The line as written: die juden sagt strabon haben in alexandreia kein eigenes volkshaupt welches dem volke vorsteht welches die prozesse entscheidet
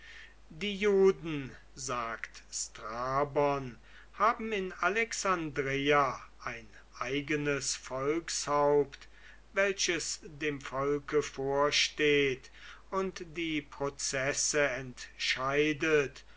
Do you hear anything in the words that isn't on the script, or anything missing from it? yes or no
yes